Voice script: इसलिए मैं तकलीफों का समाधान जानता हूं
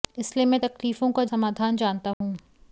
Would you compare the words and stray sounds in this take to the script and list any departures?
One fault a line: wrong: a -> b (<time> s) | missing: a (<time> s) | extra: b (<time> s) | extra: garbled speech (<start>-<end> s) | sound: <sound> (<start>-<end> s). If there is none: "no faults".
sound: dropout (2.1-2.2 s)